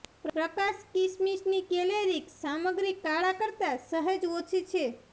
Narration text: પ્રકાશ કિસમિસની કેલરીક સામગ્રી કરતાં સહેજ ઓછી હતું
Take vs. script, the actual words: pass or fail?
fail